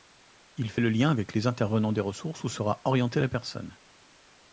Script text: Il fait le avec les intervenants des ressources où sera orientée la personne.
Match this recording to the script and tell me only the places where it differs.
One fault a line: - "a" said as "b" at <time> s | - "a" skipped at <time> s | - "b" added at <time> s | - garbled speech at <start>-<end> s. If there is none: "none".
- "lien" added at 0.9 s